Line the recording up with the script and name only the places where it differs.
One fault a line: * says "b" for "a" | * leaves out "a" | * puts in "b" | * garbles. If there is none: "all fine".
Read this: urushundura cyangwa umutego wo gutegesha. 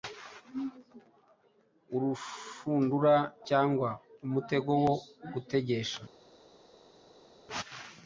all fine